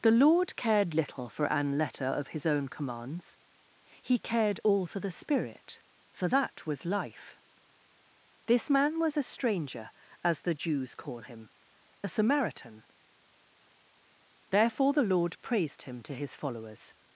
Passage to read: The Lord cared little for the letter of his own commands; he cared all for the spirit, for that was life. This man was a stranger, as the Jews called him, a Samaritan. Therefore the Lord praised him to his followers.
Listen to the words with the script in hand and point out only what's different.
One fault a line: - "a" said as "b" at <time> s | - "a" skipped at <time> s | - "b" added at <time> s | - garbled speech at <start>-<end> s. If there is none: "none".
- "the" said as "an" at 1.4 s
- "called" said as "call" at 10.9 s